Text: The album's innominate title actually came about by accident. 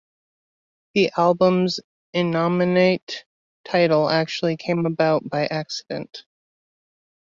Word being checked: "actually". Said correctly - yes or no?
yes